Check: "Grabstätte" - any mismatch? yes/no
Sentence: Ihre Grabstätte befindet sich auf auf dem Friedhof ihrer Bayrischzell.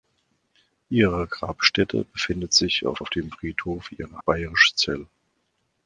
no